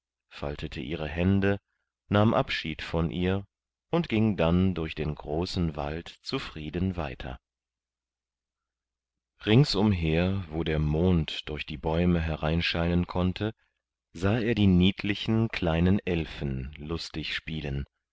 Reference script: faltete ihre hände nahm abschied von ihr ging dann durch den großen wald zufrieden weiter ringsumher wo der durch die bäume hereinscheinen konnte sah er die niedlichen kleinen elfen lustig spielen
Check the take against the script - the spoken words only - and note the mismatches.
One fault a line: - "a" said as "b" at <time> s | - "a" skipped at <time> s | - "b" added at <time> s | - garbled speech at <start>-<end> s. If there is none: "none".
- "und" added at 3.9 s
- "mond" added at 10.8 s